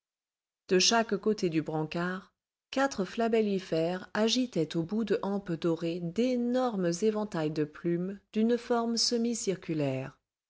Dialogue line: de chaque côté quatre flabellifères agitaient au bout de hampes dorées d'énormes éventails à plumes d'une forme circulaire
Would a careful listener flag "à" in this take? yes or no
yes